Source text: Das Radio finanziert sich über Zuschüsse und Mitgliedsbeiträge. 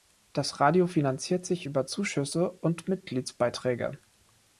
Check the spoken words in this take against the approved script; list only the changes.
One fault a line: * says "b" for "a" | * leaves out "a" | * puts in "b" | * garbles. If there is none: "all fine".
all fine